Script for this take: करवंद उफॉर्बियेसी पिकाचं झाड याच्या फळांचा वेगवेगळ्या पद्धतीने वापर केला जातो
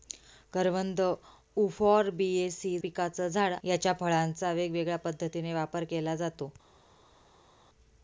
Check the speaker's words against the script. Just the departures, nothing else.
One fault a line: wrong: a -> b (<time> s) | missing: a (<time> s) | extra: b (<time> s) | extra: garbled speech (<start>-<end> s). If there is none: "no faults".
no faults